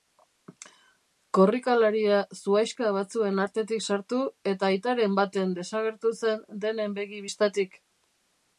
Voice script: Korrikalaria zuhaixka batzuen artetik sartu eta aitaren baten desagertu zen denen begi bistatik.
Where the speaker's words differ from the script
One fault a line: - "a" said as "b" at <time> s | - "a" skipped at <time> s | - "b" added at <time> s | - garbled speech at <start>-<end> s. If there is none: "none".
none